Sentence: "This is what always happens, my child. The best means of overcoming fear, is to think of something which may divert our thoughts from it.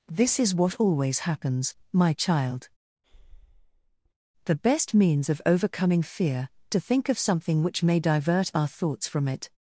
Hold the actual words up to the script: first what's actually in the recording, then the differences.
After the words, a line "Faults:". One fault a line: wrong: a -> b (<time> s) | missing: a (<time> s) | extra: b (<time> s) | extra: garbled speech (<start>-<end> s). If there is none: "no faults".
"This is what always happens, my child. The best means of overcoming fear, to think of something which may divert our thoughts from it.
Faults:
missing: is (6.5 s)